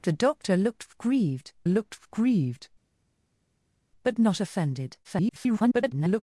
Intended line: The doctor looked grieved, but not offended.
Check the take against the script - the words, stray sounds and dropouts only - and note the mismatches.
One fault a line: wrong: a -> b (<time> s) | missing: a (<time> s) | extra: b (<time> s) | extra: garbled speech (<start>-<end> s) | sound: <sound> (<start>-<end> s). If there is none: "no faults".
extra: looked grieved (1.7 s)
extra: garbled speech (5.0-6.2 s)